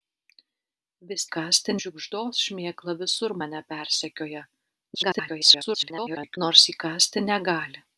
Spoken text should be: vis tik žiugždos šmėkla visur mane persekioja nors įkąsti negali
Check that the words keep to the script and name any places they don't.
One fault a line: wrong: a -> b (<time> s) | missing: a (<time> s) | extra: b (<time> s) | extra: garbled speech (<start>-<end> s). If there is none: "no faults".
wrong: tik -> įkąsti (1.3 s)
extra: garbled speech (4.9-6.4 s)